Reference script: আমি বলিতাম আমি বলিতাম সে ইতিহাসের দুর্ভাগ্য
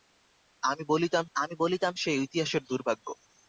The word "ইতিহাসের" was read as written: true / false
true